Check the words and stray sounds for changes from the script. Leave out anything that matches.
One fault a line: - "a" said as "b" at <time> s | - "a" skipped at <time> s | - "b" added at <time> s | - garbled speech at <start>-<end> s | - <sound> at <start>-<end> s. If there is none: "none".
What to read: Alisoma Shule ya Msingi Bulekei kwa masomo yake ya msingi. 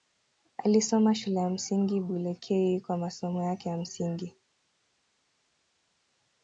none